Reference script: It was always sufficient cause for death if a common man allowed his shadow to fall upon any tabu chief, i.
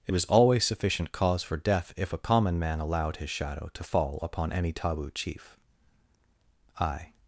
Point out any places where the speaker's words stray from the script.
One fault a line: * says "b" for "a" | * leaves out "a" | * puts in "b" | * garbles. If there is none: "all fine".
all fine